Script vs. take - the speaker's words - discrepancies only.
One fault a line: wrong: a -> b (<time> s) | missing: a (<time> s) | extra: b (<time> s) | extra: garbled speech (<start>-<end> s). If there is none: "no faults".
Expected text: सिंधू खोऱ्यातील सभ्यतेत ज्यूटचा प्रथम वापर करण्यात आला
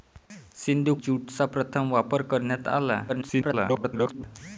missing: खोऱ्यातील सभ्यतेत (0.9 s)
extra: garbled speech (3.1-4.2 s)